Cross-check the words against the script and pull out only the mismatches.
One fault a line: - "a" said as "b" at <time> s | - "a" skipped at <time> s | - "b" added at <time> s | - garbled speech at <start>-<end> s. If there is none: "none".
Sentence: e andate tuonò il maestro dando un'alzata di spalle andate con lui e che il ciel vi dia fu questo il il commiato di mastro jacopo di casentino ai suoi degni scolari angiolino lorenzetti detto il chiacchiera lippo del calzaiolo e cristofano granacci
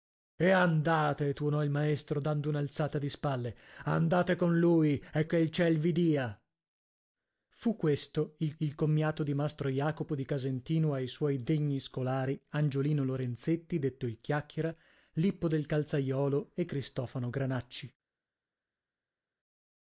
none